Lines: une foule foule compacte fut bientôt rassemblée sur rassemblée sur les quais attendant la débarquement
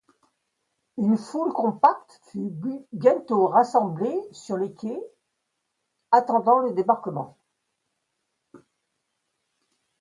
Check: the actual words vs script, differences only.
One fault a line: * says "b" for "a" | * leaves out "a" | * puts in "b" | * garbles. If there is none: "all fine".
* leaves out "foule"
* leaves out "rassemblée sur"
* says "le" for "la"